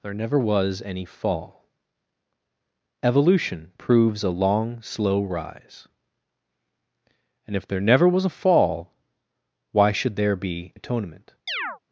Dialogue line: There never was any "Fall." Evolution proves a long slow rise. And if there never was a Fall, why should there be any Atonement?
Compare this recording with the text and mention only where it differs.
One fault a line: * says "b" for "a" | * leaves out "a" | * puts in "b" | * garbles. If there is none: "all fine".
* leaves out "any"